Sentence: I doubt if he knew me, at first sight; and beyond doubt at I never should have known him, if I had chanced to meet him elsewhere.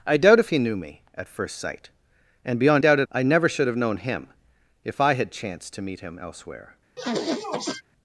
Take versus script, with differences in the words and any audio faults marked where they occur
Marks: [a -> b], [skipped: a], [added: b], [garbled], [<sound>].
I doubt if he knew me, at first sight; and beyond doubt at I never should have known him, if I had chanced to meet him elsewhere. [sniff]